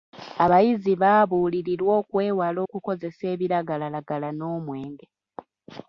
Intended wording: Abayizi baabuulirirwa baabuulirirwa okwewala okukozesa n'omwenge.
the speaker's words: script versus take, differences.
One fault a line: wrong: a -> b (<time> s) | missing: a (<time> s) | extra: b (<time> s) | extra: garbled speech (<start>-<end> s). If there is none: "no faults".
missing: baabuulirirwa (1.9 s)
extra: ebiragalalagala (3.3 s)